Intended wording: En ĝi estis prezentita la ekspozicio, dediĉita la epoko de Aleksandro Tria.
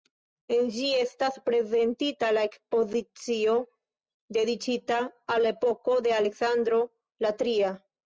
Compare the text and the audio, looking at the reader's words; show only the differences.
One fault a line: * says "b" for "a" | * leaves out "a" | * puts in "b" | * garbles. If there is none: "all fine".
* says "estas" for "estis"
* puts in "al"
* puts in "la"